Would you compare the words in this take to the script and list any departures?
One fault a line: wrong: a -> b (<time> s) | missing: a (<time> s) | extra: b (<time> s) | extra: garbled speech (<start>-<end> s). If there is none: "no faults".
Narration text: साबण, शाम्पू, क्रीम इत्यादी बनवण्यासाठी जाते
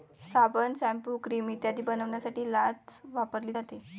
extra: लाच वापरली (2.5 s)